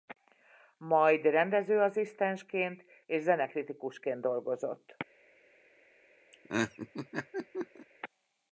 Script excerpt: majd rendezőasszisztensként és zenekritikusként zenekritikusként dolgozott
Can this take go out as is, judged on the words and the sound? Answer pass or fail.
fail